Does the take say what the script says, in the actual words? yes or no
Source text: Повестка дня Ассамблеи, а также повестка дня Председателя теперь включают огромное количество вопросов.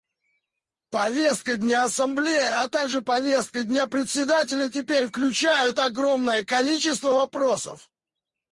yes